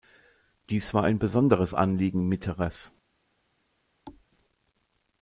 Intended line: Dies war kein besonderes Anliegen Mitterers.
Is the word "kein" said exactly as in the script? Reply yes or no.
no